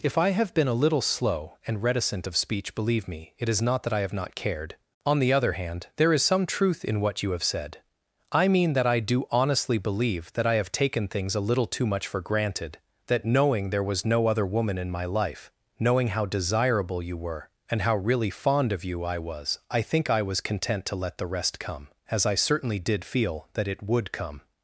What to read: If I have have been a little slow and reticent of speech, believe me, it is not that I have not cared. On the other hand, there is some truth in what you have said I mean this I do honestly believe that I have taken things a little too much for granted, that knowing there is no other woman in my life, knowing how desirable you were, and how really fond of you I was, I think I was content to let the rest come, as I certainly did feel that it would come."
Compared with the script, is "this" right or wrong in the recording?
wrong